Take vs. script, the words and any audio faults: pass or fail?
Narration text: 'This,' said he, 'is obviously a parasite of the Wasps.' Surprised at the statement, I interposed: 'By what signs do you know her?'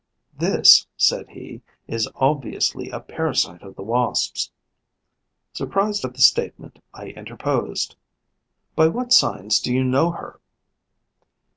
pass